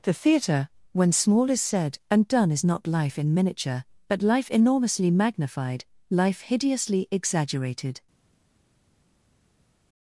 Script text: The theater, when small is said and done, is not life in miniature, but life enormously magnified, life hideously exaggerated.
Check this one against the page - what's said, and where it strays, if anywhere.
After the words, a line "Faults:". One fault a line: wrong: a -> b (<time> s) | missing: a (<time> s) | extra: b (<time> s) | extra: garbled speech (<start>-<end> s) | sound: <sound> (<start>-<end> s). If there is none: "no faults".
The theater, when small is said and done, is not life in miniature, but life enormously magnified, life hideously exaggerated.
Faults:
no faults